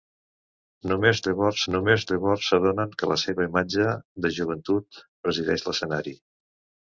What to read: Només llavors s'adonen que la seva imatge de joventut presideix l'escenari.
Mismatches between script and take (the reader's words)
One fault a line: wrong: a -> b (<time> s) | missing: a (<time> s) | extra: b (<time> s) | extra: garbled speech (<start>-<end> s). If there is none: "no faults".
extra: només llavors (1.7 s)